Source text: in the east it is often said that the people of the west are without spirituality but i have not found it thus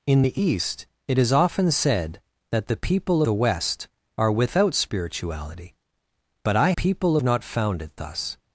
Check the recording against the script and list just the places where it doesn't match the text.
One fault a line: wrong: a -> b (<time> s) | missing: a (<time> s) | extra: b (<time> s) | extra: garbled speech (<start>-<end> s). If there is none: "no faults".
missing: of (3.2 s)
wrong: have -> people (6.7 s)